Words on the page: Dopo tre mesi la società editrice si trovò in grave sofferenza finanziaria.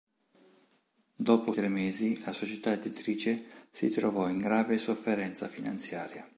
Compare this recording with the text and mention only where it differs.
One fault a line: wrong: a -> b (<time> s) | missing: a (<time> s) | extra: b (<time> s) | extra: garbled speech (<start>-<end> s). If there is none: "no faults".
no faults